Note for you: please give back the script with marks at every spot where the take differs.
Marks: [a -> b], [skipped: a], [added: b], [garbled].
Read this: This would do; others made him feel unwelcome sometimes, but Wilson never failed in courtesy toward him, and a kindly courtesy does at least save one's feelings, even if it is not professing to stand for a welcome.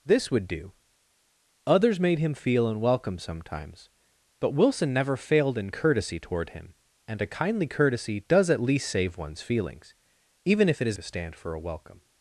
This would do; others made him feel unwelcome sometimes, but Wilson never failed in courtesy toward him, and a kindly courtesy does at least save one's feelings, even if it is [skipped: not professing] to stand for a welcome.